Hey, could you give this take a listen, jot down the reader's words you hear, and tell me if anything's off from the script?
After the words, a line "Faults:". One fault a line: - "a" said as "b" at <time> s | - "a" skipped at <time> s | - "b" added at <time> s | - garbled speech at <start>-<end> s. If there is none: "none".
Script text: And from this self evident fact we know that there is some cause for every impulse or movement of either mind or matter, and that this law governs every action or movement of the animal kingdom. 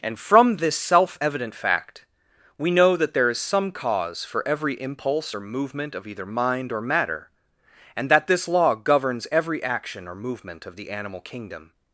And from this self evident fact we know that there is some cause for every impulse or movement of either mind or matter, and that this law governs every action or movement of the animal kingdom.
Faults:
none